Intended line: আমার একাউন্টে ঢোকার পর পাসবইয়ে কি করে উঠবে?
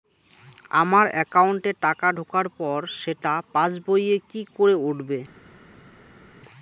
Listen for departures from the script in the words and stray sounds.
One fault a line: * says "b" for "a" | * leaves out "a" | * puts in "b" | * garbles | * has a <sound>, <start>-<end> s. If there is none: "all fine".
* puts in "টাকা"
* puts in "সেটা"